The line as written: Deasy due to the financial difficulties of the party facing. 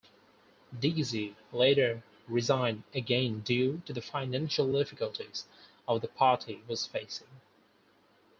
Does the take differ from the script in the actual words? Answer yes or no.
yes